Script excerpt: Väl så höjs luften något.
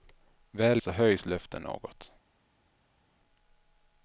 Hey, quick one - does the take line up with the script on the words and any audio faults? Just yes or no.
yes